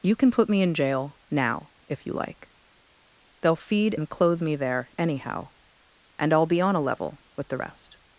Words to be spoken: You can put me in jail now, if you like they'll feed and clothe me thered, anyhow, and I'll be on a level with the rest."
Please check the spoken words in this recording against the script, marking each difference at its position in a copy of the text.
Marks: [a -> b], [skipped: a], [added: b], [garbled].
You can put me in jail now, if you like they'll feed and clothe me [thered, -> there] anyhow, and I'll be on a level with the rest."